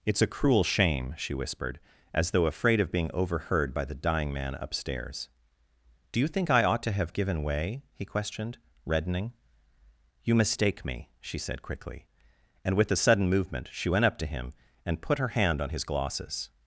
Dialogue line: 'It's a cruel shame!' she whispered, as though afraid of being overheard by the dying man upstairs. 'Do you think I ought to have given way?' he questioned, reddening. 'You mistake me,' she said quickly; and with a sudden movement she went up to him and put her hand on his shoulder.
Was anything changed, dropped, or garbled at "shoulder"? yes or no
yes